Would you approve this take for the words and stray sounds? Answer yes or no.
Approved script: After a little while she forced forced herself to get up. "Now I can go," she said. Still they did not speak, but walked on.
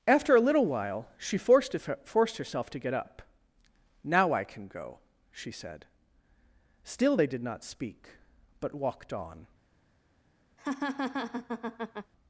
no